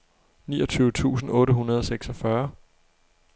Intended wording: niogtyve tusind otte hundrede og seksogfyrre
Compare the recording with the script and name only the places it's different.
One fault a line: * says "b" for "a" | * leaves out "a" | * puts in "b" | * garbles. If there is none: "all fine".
all fine